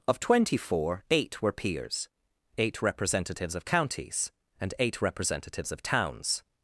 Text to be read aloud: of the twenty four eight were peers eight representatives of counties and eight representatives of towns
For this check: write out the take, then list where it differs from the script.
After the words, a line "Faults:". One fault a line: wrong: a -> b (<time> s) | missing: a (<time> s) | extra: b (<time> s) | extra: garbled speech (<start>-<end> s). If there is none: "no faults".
of twenty four eight were peers eight representatives of counties and eight representatives of towns
Faults:
missing: the (0.2 s)